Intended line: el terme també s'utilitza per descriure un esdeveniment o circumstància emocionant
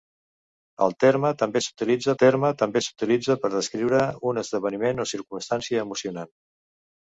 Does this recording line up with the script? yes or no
no